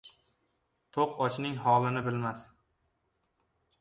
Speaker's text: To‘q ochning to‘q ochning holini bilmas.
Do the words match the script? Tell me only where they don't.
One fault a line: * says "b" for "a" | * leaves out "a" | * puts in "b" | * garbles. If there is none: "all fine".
* leaves out "to‘q ochning"